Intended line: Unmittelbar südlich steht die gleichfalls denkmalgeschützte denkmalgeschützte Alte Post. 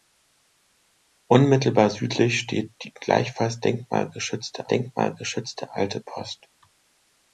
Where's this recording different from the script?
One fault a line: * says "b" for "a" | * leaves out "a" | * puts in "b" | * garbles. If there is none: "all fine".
all fine